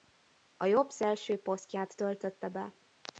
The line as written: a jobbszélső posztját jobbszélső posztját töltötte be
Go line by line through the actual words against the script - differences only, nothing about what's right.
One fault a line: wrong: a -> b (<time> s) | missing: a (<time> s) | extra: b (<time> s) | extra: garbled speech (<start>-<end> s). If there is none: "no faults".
missing: jobbszélső posztját (2.0 s)